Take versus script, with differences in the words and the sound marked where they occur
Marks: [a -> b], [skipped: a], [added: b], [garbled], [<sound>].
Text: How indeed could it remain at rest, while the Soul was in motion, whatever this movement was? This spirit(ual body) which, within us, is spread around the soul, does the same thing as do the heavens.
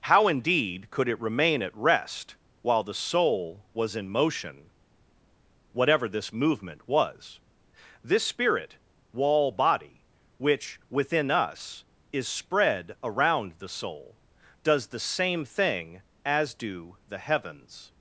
How indeed could it remain at rest, while the Soul was in motion, whatever this movement was? This [spirit(ual -> spirit wall] body) which, within us, is spread around the soul, does the same thing as do the heavens.